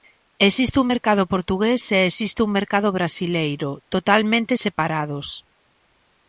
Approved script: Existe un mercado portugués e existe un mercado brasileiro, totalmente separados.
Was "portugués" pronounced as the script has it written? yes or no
yes